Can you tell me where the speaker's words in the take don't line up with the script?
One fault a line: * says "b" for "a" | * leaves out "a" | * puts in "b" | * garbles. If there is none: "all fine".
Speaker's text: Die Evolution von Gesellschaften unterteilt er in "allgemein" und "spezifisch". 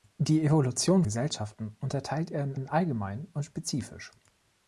* leaves out "von"
* puts in "in"